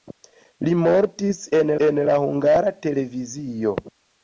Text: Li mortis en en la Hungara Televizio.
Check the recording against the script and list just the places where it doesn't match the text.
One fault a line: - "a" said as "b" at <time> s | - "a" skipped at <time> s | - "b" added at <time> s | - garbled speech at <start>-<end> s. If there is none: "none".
none